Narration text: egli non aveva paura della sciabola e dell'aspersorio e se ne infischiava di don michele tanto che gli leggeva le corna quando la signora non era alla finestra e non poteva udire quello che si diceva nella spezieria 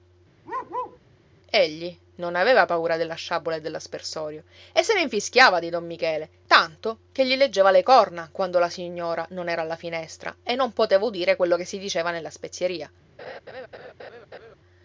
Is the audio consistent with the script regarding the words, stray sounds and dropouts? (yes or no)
no